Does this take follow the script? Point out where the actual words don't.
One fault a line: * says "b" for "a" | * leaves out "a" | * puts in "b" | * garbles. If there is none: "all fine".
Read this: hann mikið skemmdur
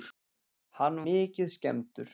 all fine